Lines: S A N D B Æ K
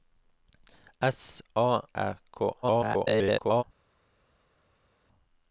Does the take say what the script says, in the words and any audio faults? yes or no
no